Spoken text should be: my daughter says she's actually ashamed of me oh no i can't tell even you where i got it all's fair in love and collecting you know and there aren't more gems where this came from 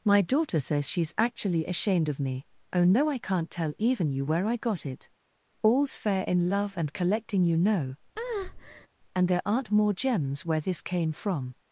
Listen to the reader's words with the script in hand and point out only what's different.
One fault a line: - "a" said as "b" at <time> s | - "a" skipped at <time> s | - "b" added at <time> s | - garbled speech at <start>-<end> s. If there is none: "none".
none